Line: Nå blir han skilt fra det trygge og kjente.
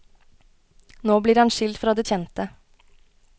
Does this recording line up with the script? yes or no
no